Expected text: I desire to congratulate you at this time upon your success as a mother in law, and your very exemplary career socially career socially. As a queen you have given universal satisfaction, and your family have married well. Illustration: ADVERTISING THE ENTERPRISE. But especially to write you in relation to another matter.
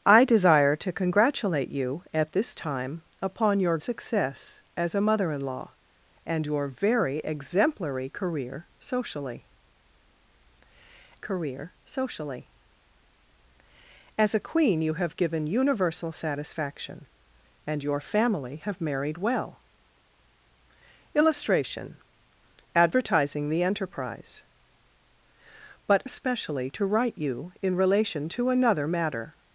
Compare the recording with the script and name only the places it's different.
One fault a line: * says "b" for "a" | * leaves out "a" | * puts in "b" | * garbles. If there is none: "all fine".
all fine